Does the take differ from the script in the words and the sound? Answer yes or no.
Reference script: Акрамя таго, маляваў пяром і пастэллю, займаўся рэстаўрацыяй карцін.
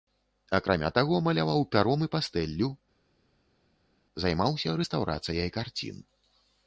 no